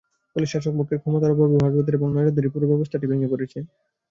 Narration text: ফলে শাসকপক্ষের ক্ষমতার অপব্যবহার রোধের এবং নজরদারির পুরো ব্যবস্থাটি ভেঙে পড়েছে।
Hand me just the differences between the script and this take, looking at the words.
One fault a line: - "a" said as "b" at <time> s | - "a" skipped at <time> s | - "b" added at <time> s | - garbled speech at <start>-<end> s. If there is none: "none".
none